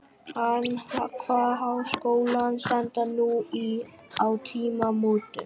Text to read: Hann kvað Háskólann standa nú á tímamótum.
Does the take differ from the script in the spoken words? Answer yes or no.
no